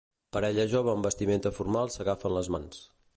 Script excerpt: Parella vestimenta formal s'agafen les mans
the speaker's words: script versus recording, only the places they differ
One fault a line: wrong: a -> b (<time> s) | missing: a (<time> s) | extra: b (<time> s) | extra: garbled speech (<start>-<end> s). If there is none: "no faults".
extra: jove amb (0.7 s)